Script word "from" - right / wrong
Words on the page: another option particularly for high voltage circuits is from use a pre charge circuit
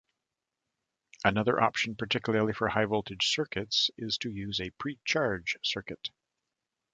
wrong